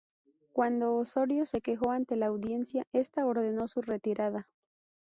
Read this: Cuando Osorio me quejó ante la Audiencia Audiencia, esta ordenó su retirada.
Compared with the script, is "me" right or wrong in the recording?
wrong